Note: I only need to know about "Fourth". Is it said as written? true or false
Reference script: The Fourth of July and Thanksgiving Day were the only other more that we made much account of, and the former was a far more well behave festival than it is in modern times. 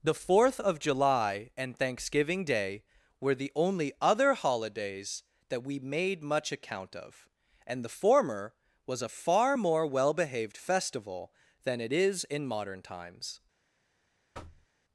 true